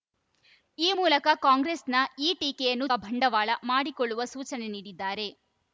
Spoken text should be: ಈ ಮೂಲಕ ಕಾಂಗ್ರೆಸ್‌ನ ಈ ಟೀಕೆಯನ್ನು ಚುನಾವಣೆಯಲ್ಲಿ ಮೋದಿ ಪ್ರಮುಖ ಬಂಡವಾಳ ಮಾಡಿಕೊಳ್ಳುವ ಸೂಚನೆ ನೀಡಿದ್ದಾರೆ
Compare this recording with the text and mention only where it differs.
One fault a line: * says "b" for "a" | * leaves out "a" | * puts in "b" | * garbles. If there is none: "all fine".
* leaves out "ಚುನಾವಣೆಯಲ್ಲಿ ಮೋದಿ ಪ್ರಮುಖ"